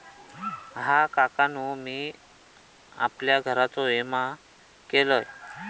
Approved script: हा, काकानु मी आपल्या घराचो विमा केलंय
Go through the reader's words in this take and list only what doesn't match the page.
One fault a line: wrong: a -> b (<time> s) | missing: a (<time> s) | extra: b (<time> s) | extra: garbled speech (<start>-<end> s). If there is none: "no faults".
no faults